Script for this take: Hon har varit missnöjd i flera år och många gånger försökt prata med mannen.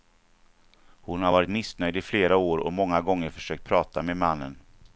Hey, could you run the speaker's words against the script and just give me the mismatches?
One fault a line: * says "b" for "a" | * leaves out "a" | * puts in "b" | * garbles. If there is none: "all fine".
all fine